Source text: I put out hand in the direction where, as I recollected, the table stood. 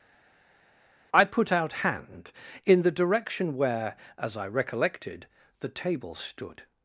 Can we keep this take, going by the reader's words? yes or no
yes